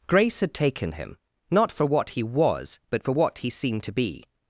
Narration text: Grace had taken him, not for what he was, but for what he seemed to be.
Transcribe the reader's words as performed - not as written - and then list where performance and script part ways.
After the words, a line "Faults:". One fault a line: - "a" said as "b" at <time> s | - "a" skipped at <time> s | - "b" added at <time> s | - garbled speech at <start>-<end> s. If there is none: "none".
Grace had taken him, not for what he was, but for what he seemed to be.
Faults:
none